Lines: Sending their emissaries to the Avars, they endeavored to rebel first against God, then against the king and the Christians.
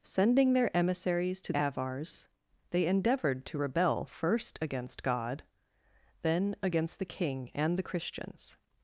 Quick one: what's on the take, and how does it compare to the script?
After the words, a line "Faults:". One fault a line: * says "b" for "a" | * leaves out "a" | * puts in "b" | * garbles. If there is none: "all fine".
Sending their emissaries to Avars, they endeavored to rebel first against God, then against the king and the Christians.
Faults:
* leaves out "the"